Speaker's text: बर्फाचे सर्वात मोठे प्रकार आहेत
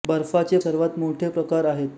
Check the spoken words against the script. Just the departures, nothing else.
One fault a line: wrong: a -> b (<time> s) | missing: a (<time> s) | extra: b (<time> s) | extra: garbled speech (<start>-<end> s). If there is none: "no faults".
no faults